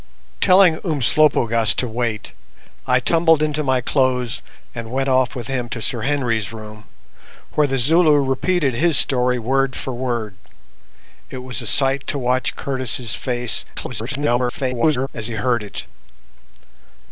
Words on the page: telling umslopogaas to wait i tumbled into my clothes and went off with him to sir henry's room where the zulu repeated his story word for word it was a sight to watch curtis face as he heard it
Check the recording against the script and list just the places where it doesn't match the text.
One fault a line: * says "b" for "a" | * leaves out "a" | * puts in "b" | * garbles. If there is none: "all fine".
* garbles